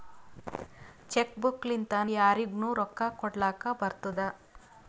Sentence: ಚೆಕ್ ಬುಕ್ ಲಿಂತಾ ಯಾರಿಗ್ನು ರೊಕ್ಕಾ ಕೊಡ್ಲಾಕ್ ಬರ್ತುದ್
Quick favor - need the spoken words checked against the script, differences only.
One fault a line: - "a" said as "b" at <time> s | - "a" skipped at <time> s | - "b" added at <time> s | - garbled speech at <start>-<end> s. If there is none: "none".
none